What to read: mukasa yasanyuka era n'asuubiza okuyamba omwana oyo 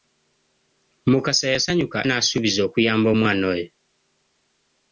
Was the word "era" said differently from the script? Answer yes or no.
yes